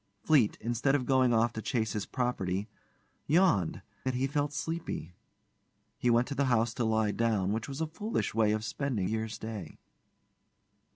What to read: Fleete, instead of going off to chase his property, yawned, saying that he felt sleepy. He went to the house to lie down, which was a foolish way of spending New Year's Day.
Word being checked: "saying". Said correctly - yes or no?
no